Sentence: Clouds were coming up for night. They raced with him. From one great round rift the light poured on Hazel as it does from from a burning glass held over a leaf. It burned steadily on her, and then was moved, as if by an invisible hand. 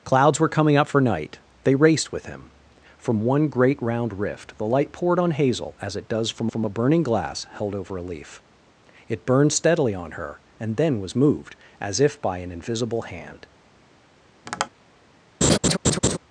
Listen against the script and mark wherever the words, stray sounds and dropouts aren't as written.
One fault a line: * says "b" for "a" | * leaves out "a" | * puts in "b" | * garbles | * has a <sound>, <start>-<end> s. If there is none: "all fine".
* has a tap, 14.5-14.7 s
* has a laugh, 15.4-16.2 s